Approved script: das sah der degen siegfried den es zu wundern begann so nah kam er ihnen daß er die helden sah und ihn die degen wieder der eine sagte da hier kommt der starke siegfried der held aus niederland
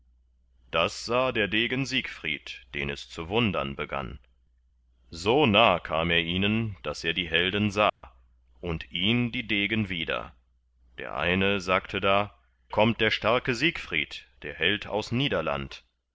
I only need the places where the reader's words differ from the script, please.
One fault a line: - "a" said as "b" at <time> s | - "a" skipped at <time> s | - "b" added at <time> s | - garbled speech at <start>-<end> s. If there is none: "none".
- "hier" skipped at 12.3 s